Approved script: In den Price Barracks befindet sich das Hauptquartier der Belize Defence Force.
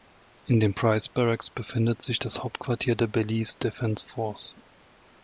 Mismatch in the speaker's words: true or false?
false